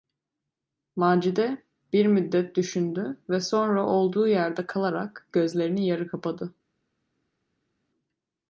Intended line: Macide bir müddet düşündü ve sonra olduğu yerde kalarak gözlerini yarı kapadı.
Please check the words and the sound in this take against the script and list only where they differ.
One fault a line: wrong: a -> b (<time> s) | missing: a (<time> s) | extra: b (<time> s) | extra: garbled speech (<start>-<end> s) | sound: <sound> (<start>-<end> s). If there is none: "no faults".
no faults